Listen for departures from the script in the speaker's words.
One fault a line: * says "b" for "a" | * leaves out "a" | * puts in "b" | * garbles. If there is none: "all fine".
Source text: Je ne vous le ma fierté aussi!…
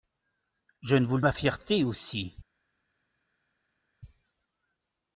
all fine